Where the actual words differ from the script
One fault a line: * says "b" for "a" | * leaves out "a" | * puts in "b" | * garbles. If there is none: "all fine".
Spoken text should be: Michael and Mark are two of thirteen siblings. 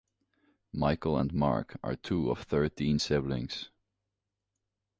all fine